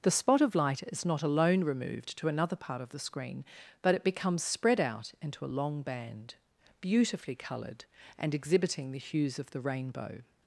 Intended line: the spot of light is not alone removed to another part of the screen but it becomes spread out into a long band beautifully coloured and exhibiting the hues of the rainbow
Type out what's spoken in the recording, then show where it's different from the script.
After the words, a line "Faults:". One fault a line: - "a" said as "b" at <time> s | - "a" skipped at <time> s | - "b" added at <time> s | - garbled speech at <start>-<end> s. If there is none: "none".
the spot of light is not alone removed to another part of the screen but it becomes spread out into a long band beautifully coloured and exhibiting the hues of the rainbow
Faults:
none